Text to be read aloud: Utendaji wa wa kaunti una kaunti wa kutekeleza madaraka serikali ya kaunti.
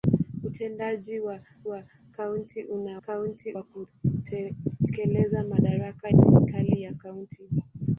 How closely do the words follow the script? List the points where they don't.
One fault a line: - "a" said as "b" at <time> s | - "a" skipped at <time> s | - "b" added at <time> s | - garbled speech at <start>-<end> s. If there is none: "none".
none